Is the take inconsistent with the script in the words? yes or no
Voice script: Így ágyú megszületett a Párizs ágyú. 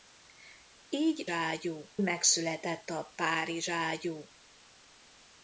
no